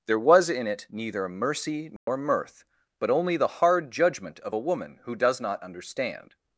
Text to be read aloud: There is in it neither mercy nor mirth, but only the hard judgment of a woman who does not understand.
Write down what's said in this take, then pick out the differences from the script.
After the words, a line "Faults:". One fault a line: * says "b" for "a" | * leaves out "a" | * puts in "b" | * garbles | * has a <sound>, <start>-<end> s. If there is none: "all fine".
There was in it neither mercy nor mirth, but only the hard judgment of a woman who does not understand.
Faults:
* says "was" for "is"
* has a dropout, 2.0-2.1 s